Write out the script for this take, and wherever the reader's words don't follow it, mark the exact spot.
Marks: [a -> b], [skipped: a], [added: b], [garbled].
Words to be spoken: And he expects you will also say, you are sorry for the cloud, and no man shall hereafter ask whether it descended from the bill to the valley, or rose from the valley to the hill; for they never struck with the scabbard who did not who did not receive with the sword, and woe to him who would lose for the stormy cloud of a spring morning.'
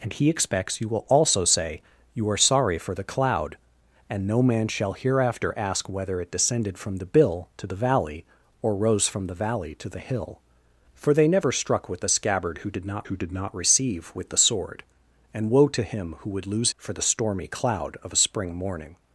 And he expects you will also say, you are sorry for the cloud, and no man shall hereafter ask whether it descended from the bill to the valley, or rose from the valley to the hill; for they never struck with the scabbard who did not who did not receive with the sword, and woe to him who would lose for the stormy cloud of a spring morning.'